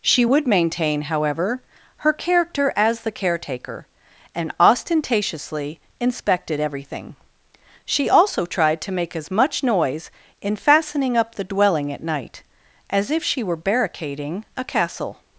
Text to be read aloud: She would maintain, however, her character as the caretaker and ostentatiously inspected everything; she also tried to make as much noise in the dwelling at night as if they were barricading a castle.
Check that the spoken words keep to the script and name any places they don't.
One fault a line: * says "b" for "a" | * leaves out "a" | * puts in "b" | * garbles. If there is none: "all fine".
* puts in "fastening up"
* says "she" for "they"